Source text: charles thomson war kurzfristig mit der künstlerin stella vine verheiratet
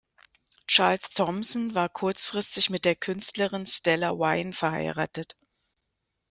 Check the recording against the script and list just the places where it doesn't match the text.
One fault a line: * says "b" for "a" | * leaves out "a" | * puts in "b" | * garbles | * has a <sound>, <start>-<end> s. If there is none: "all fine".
all fine